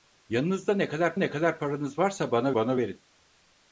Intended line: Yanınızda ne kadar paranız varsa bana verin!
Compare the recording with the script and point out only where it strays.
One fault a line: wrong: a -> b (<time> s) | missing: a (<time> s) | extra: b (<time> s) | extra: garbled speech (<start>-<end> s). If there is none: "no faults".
extra: ne kadar (1.1 s)
extra: bana (2.5 s)